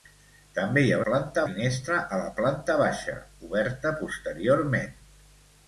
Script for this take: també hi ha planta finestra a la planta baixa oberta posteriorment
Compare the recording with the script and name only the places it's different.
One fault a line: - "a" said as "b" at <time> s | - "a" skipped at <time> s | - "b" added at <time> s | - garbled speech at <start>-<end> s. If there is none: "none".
none